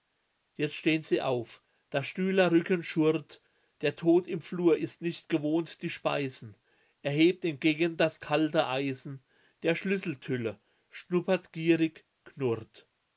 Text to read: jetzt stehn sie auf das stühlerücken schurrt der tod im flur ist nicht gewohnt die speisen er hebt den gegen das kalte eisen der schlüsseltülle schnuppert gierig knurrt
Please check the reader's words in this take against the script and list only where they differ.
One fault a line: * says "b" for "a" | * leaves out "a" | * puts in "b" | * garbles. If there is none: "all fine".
all fine